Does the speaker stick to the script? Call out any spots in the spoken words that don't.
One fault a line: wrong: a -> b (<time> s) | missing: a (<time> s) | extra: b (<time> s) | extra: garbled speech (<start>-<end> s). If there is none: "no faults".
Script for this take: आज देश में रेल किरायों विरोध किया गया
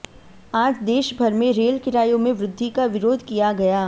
extra: भर (1.2 s)
extra: में वृद्धि का (2.2 s)